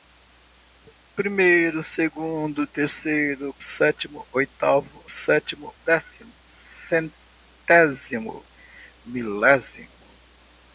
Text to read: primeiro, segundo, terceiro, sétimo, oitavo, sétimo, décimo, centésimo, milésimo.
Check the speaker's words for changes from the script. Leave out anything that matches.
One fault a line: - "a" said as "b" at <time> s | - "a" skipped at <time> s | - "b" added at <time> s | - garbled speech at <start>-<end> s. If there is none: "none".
none